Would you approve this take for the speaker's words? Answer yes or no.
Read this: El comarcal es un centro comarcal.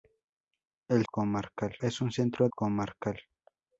yes